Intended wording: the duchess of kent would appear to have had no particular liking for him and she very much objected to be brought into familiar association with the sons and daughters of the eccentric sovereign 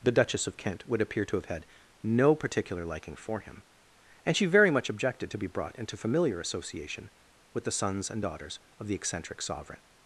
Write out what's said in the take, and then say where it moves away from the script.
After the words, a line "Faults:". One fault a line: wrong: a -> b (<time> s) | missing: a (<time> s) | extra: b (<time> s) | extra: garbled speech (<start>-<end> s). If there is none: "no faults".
the duchess of kent would appear to have had no particular liking for him and she very much objected to be brought into familiar association with the sons and daughters of the eccentric sovereign
Faults:
no faults